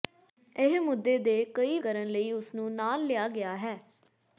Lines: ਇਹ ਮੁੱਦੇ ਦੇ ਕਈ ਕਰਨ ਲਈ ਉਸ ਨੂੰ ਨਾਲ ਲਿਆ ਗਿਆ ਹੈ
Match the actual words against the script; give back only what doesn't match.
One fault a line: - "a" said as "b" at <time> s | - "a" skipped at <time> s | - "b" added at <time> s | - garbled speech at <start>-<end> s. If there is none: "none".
none